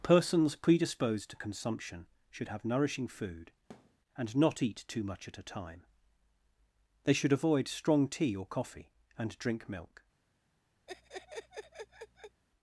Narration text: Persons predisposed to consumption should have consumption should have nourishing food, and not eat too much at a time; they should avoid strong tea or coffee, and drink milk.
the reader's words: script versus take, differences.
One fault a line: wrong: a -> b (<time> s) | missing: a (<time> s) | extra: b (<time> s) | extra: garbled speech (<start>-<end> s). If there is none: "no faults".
missing: consumption should have (2.6 s)